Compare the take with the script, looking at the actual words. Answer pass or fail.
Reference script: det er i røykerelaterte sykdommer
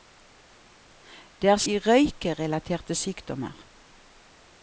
pass